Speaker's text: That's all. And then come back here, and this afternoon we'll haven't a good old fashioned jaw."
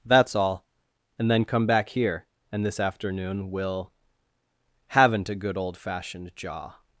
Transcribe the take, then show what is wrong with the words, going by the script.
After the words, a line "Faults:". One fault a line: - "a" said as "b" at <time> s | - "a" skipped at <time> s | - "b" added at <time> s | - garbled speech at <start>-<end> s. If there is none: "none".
That's all. And then come back here, and this afternoon we'll haven't a good old fashioned jaw."
Faults:
none